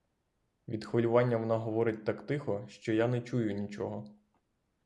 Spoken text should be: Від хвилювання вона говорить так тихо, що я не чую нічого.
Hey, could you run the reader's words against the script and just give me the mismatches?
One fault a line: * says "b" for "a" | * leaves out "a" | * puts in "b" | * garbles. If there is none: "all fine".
all fine